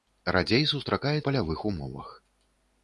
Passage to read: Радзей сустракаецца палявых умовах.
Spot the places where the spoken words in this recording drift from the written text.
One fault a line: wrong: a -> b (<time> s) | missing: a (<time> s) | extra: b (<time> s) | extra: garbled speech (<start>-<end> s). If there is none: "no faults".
no faults